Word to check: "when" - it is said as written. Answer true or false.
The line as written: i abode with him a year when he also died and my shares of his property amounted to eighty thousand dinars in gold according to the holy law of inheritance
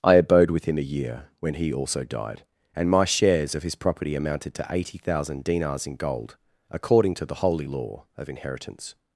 true